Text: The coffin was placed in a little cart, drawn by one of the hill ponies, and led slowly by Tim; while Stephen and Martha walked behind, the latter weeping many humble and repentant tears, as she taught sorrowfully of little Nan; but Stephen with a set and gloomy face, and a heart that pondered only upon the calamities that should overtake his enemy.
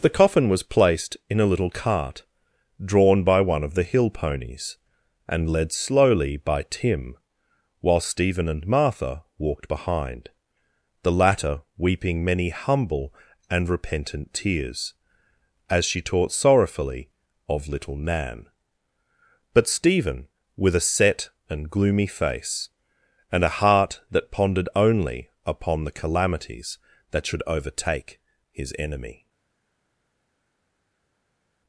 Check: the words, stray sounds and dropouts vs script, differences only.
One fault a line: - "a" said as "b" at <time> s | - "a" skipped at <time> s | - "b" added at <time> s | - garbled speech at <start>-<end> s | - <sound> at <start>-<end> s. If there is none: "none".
none